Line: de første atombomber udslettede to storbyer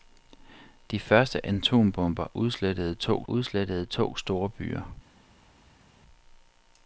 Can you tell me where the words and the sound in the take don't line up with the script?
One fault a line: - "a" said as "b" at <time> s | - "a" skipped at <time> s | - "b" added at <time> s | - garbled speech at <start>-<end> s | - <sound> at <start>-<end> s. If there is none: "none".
- "udslettede to" added at 3.3 s